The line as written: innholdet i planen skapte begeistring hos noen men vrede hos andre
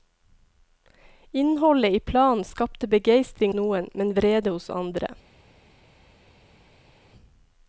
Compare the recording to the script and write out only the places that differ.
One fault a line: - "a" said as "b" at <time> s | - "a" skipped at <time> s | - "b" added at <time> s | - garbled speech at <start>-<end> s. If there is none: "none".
- "hos" skipped at 3.5 s